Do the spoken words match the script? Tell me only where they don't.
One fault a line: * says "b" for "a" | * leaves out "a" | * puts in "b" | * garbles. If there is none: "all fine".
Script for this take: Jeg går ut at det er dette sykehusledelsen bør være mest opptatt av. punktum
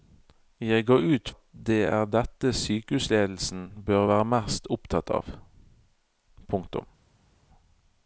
all fine